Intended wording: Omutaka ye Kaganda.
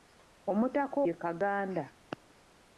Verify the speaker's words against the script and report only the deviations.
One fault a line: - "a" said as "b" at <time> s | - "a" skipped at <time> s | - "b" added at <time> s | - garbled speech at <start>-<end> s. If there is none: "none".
none